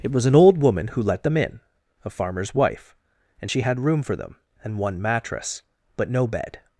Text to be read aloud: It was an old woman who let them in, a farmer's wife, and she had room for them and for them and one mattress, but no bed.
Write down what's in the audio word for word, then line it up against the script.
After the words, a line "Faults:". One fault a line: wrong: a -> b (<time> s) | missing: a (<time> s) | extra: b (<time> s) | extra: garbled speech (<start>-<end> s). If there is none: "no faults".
It was an old woman who let them in, a farmer's wife, and she had room for them and one mattress, but no bed.
Faults:
missing: for them and (4.8 s)